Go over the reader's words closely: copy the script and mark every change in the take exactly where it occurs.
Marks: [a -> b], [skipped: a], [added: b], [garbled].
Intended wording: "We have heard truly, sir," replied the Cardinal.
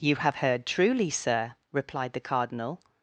["We -> You] have heard truly, sir," replied the Cardinal.